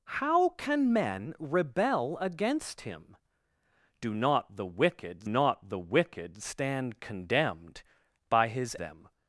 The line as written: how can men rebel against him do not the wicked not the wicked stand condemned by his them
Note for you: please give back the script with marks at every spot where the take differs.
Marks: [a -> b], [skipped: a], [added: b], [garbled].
how can men rebel against him do not the wicked not the wicked stand condemned by his them